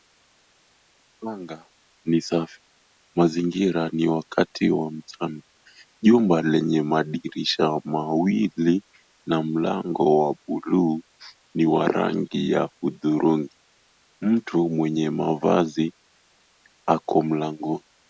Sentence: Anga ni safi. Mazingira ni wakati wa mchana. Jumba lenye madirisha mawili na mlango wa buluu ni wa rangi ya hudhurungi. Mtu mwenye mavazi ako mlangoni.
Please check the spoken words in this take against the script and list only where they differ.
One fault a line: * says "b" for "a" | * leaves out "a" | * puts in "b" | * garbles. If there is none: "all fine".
all fine